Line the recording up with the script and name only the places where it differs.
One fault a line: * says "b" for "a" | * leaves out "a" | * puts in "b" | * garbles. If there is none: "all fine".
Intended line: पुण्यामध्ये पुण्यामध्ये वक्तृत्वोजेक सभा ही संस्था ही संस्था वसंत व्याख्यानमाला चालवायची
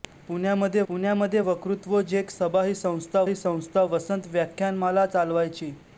all fine